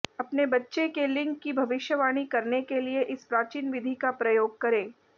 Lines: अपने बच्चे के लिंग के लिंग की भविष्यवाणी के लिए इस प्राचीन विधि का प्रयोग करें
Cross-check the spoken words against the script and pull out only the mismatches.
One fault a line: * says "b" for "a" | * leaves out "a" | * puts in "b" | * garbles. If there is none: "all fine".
* leaves out "के लिंग"
* puts in "करने"